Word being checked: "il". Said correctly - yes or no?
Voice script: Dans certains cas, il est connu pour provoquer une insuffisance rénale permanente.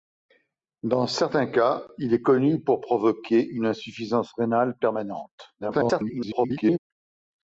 yes